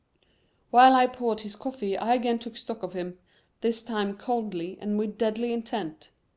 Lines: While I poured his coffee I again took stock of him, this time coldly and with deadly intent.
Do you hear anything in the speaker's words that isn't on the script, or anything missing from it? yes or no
no